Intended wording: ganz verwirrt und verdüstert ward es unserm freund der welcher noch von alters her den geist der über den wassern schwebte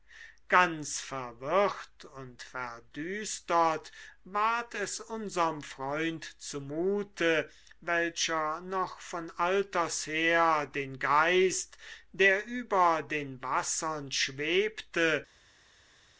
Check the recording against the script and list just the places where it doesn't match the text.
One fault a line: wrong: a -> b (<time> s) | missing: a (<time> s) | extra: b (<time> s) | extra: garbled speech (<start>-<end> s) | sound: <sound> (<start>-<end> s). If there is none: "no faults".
wrong: der -> zumute (6.4 s)